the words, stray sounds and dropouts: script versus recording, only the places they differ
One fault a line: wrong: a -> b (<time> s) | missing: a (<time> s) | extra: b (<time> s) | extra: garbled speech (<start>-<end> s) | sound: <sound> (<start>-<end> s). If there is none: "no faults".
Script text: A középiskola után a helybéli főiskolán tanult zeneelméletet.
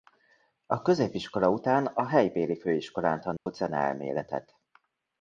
sound: dropout (3.4-3.5 s)